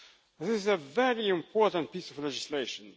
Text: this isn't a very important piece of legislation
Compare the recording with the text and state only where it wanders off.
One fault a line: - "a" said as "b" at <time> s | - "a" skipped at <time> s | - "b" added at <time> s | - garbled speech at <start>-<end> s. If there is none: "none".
- "isn't" said as "is" at 0.5 s